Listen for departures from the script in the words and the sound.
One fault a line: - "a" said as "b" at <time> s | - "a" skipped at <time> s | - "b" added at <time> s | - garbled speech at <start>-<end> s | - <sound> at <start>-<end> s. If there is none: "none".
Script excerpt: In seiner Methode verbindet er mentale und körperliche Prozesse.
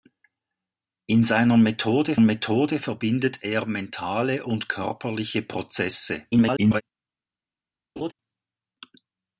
- "Methode" added at 2.2 s
- garbled speech at 6.3-6.8 s
- laugh at 8.0-8.1 s